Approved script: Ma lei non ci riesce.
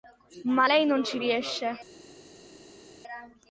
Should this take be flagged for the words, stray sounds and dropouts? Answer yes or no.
no